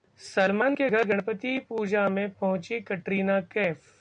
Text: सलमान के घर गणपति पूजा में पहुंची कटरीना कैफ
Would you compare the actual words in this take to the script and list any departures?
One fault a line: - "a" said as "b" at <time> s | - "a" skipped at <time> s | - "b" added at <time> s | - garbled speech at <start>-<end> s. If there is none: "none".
none